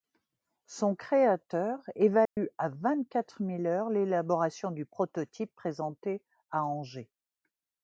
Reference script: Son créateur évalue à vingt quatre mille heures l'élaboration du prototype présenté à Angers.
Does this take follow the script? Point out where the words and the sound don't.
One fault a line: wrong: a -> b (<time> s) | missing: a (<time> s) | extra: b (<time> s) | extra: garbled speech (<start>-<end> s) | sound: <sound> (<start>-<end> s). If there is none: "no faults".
sound: dropout (2.3-2.4 s)